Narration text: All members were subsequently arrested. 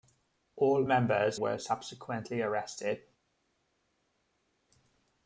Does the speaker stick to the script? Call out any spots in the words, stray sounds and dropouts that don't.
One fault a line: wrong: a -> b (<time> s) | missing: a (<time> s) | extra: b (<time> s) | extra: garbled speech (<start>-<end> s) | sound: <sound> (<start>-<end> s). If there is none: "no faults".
no faults